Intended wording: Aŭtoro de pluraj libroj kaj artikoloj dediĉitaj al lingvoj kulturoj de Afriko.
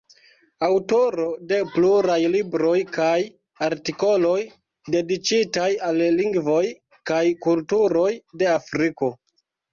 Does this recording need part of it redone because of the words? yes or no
yes